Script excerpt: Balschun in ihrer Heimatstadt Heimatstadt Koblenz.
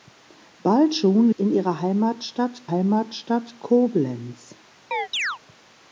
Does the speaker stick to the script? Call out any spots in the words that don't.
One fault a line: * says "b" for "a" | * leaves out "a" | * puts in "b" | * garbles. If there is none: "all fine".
all fine